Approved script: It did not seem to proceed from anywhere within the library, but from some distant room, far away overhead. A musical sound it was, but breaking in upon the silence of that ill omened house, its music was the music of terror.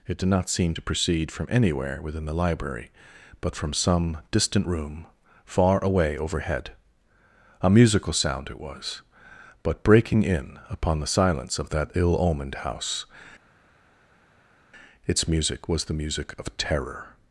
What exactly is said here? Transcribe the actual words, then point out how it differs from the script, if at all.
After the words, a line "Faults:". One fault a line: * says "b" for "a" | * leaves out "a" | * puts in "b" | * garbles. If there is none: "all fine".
It did not seem to proceed from anywhere within the library, but from some distant room, far away overhead. A musical sound it was, but breaking in upon the silence of that ill omened house, its music was the music of terror.
Faults:
all fine